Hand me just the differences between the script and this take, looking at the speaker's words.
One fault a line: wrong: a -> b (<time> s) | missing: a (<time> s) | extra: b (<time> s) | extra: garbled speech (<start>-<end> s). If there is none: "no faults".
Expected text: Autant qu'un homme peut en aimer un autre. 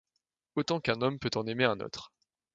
no faults